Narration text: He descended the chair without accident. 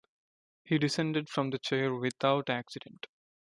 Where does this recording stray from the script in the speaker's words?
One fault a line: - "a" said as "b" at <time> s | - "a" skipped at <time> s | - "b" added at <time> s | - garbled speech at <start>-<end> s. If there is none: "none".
- "from" added at 1.3 s